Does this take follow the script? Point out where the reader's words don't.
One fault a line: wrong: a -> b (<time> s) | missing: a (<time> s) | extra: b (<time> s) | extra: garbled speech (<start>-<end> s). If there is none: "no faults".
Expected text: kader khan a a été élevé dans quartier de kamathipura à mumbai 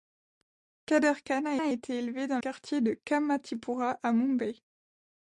no faults